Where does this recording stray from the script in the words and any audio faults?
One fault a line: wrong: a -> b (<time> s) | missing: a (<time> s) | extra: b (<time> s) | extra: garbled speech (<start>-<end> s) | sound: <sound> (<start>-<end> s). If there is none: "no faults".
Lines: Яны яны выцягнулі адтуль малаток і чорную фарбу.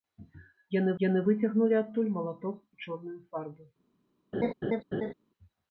sound: laugh (4.3-5.1 s)